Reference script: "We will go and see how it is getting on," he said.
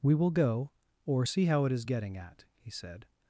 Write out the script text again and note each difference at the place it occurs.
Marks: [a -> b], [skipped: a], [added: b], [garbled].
"We will go [and -> or] see how it is getting [on," -> at] he said.